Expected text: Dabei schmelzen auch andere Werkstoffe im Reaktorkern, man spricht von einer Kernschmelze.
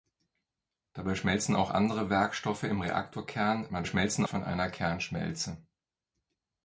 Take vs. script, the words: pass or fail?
fail